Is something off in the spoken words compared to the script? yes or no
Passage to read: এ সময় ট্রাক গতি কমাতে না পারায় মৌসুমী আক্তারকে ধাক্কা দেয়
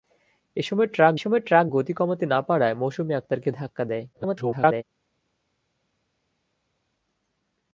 yes